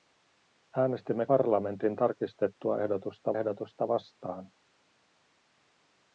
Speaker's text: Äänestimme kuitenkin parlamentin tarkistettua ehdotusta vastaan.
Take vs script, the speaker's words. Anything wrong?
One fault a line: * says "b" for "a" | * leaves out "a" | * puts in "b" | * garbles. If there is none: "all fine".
* leaves out "kuitenkin"
* puts in "ehdotusta"